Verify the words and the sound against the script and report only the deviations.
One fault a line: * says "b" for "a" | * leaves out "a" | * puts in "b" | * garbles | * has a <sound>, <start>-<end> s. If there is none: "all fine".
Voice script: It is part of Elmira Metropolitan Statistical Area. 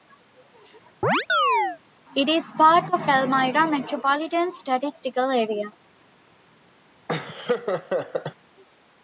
* has a chirp, 1.0-1.8 s
* has a laugh, 7.1-8.3 s